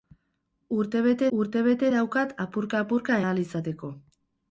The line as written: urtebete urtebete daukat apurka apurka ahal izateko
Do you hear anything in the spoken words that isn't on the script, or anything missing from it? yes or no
no